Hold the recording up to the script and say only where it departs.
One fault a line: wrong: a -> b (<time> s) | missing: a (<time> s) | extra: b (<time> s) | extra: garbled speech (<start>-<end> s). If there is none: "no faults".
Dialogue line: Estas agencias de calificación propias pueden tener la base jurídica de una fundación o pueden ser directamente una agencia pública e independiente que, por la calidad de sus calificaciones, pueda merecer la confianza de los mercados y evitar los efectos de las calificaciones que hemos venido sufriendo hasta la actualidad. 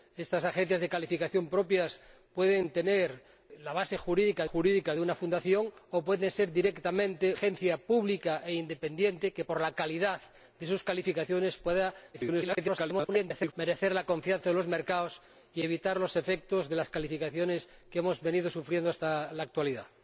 extra: jurídica (4.4 s)
missing: una (7.4 s)
extra: garbled speech (12.1-13.5 s)